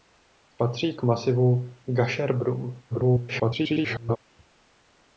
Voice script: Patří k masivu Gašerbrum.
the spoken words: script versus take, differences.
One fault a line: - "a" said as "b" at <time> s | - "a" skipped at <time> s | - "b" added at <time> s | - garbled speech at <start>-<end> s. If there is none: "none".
- garbled speech at 2.9-4.2 s